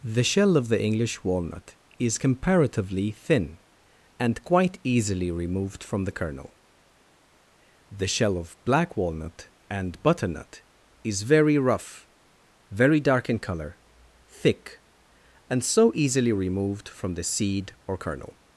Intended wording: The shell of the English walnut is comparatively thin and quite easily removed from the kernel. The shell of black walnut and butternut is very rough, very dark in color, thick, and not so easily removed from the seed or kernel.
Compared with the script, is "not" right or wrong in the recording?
wrong